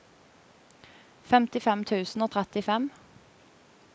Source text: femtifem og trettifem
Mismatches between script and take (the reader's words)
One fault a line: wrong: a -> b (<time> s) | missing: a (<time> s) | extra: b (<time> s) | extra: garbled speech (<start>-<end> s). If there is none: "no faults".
extra: tusen (1.9 s)